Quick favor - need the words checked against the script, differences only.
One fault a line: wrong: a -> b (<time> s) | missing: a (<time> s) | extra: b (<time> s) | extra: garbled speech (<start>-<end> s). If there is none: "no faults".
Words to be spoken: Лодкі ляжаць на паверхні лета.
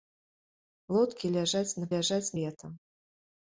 wrong: паверхні -> ляжаць (1.9 s)